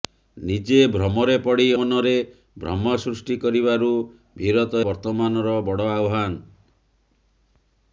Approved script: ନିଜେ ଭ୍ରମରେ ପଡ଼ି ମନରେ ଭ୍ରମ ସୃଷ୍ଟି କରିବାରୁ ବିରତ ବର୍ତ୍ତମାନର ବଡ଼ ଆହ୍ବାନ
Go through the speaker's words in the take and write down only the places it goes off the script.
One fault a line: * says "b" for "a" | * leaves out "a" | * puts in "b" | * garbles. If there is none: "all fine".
all fine